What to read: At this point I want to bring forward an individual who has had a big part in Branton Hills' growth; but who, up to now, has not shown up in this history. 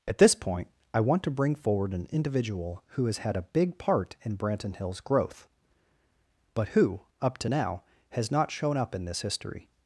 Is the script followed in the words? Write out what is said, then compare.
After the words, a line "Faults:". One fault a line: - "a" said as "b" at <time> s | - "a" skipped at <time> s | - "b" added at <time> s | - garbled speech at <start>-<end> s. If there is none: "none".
At this point I want to bring forward an individual who has had a big part in Branton Hills' growth; but who, up to now, has not shown up in this history.
Faults:
none